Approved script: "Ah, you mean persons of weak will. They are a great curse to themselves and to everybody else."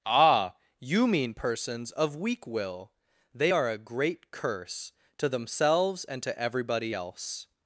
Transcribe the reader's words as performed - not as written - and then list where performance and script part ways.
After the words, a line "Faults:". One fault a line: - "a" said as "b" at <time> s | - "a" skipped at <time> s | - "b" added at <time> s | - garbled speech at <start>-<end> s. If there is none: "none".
"Ah, you mean persons of weak will. They are a great curse to themselves and to everybody else."
Faults:
none